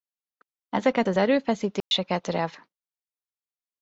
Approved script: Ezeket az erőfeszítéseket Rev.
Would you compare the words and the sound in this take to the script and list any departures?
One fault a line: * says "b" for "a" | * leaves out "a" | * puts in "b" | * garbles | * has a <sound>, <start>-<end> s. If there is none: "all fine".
* has a dropout, 1.8-1.9 s